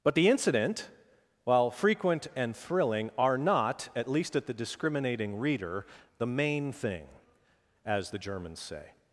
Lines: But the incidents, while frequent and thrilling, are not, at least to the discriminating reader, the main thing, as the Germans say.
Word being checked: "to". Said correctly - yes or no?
no